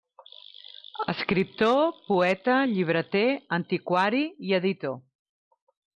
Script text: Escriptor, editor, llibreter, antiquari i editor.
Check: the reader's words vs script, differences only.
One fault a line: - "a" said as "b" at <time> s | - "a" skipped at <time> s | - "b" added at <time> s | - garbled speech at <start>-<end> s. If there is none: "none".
- "editor" said as "poeta" at 2.1 s